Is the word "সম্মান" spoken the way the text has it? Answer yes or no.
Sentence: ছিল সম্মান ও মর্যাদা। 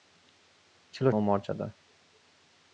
no